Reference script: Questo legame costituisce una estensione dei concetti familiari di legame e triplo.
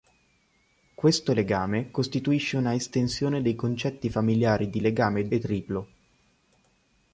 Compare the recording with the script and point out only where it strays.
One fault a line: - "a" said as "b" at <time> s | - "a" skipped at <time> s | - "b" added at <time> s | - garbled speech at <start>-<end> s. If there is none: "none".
none